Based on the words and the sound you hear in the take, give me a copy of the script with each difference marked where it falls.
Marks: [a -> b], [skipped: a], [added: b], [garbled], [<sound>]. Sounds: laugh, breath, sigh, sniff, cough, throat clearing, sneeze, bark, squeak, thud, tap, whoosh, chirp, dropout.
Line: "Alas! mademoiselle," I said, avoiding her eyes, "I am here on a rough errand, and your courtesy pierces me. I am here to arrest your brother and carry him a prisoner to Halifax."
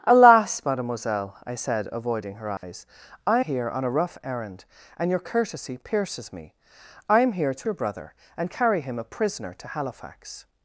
"Alas! mademoiselle," I said, avoiding her eyes, [dropout] "I [skipped: am] here on a rough errand, and your courtesy pierces me. I am here to [skipped: arrest] your brother and carry him a prisoner to Halifax."